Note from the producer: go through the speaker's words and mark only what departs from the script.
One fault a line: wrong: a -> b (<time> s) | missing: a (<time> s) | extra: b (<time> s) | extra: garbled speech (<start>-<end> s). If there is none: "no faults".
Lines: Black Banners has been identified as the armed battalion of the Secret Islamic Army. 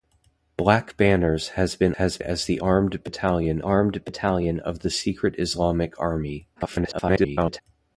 wrong: identified -> has (1.9 s)
extra: armed battalion (3.6 s)
extra: garbled speech (6.6-7.6 s)